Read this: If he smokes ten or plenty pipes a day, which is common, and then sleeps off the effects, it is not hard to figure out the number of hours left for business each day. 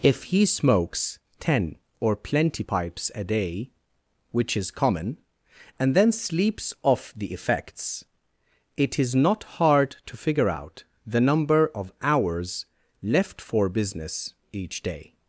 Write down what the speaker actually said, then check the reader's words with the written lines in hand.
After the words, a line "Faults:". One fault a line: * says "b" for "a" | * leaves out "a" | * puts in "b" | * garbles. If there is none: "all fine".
If he smokes ten or plenty pipes a day, which is common, and then sleeps off the effects, it is not hard to figure out the number of hours left for business each day.
Faults:
all fine